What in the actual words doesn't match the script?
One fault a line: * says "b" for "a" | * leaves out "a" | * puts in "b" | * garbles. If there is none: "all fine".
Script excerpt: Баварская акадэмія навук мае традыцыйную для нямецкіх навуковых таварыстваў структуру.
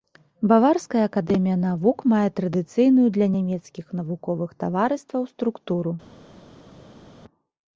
all fine